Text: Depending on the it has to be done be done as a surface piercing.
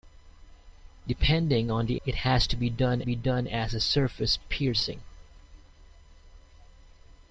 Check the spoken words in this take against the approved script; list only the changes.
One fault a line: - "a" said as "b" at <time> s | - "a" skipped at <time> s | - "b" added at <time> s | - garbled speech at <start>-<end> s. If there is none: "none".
none